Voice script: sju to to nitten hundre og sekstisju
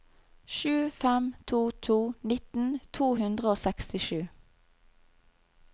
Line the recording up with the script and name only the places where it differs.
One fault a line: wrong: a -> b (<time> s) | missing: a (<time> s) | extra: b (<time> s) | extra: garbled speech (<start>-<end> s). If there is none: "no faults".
extra: fem (0.9 s)
extra: to (3.0 s)